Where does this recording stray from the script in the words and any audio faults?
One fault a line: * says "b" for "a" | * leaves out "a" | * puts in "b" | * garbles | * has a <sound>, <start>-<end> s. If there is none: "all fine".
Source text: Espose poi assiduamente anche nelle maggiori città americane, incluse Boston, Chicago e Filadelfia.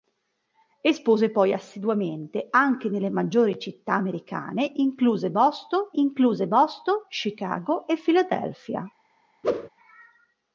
* puts in "incluse Boston"
* has a whoosh, 9.4-9.7 s